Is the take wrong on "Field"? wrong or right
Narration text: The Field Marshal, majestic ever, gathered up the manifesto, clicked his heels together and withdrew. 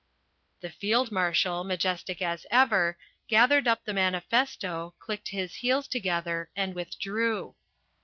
right